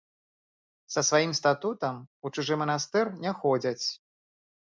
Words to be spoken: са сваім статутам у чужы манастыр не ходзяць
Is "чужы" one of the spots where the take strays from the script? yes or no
no